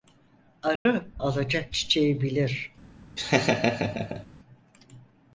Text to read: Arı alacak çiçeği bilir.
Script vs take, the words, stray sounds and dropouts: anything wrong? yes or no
yes